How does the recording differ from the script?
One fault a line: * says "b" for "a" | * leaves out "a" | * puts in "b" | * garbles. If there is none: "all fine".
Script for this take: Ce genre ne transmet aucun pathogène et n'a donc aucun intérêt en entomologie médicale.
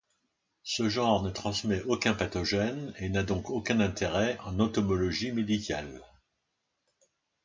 all fine